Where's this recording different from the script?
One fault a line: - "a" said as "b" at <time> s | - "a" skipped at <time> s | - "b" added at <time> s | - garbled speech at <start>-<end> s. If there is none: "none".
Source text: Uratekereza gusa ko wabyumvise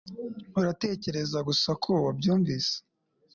none